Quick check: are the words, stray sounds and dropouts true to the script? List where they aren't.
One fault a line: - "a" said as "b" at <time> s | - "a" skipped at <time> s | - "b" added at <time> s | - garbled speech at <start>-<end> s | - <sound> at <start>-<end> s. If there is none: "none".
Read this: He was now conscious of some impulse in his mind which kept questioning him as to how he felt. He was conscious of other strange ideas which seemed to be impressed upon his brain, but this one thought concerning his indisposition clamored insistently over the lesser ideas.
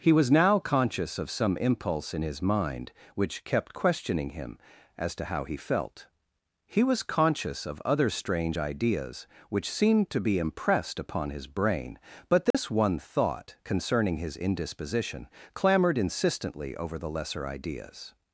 - dropout at 12.5-12.5 s